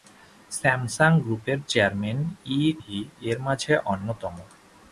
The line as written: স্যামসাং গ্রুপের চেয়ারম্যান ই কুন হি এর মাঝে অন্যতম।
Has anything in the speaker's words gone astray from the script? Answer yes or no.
yes